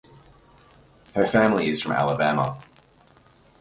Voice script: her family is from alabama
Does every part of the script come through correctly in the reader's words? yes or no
yes